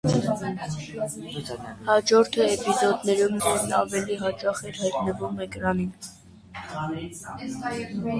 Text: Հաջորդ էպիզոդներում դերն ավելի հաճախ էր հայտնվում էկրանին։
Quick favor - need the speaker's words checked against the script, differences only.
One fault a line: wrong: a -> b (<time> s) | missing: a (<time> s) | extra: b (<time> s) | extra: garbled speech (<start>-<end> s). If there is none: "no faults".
no faults